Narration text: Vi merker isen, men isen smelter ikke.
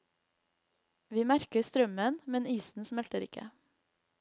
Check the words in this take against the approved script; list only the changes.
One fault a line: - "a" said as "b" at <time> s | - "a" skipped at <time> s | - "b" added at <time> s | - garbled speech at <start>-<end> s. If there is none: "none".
- "isen" said as "strømmen" at 1.7 s